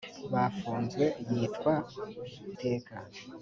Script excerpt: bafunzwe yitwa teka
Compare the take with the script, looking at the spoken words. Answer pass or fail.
pass